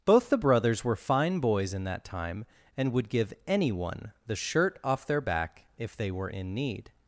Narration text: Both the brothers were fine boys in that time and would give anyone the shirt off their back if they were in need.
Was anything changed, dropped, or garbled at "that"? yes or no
no